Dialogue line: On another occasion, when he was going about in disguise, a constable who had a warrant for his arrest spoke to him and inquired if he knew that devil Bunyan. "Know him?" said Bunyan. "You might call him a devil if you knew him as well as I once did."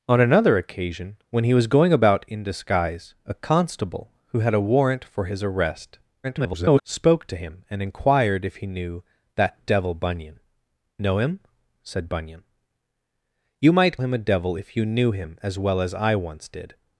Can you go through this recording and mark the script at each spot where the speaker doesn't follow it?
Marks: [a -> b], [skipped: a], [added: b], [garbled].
On another occasion, when he was going about in disguise, a constable who had a warrant for his arrest [garbled] spoke to him and inquired if he knew that devil Bunyan. "Know him?" said Bunyan. "You might [skipped: call] him a devil if you knew him as well as I once did."